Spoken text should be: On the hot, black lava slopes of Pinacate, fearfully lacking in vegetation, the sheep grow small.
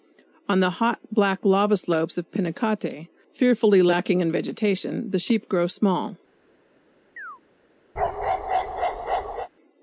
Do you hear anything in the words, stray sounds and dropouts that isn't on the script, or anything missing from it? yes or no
yes